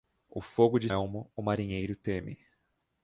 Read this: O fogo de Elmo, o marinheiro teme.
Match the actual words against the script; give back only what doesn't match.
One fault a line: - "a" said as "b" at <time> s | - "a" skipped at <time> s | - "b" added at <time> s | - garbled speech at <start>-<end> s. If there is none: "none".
none